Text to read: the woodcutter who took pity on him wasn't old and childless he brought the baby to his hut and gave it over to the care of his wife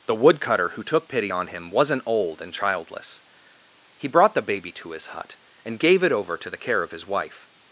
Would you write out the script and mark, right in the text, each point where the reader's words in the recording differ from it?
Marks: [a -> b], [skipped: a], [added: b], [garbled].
the woodcutter who took pity on him wasn't old and childless he brought the baby to his hut and gave it over to the care of his wife